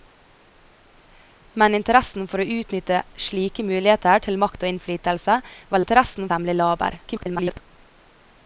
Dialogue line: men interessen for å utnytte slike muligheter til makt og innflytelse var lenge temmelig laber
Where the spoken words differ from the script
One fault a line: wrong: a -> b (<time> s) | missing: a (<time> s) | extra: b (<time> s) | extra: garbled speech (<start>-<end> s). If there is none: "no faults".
wrong: lenge -> interessen (5.8 s)
extra: garbled speech (7.1-7.6 s)